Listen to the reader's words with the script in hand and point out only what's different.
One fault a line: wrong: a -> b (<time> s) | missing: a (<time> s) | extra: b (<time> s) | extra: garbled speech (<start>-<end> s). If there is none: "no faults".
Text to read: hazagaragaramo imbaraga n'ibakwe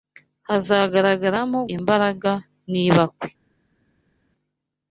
no faults